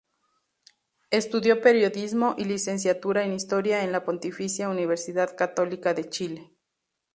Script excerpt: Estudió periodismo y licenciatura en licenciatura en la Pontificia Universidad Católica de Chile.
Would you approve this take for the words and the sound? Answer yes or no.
no